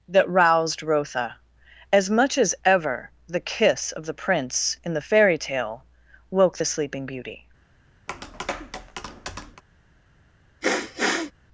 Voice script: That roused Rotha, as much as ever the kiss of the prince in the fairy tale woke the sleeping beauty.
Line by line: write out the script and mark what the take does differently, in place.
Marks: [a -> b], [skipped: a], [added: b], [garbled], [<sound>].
That roused Rotha, as much as ever the kiss of the prince in the fairy tale woke the sleeping beauty. [tap] [sniff]